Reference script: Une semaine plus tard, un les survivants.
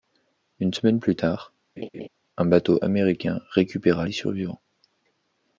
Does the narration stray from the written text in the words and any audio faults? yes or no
yes